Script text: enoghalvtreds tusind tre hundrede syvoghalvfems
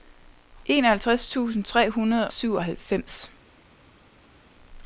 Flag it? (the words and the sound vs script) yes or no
no